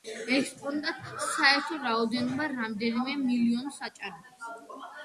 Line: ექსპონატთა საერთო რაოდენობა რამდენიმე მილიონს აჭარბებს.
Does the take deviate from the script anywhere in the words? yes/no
no